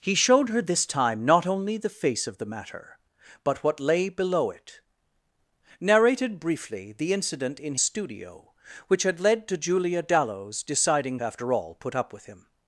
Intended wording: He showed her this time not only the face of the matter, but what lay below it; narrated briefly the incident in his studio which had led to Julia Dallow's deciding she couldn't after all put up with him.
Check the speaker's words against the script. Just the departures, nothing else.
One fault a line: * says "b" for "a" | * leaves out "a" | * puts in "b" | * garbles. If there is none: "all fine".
* leaves out "his"
* leaves out "she couldn't"